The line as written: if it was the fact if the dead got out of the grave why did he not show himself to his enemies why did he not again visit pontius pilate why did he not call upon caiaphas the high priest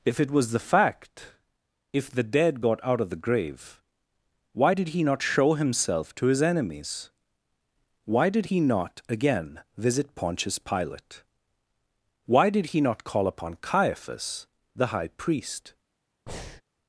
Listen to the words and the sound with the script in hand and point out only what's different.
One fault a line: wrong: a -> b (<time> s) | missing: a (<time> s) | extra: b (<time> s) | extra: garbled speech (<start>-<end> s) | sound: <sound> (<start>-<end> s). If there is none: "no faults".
sound: breath (16.3-16.6 s)